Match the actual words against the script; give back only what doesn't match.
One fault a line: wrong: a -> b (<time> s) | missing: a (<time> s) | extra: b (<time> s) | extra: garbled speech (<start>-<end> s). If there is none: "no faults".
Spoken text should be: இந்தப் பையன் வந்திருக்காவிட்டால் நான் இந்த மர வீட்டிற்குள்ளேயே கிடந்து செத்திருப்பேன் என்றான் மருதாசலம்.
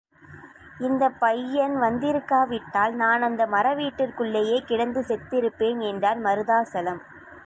wrong: இந்த -> அந்த (3.2 s)